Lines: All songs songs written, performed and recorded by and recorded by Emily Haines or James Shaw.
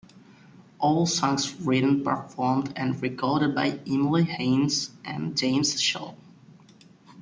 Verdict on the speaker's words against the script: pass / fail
fail